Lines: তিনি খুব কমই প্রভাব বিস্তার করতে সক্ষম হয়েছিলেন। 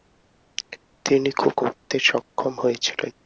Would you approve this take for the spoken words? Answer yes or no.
no